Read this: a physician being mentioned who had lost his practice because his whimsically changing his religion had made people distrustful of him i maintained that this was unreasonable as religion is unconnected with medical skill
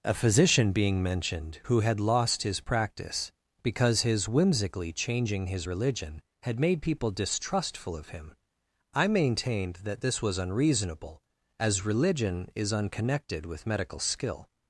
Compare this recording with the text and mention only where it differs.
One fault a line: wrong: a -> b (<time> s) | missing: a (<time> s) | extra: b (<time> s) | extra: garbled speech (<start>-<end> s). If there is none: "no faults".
no faults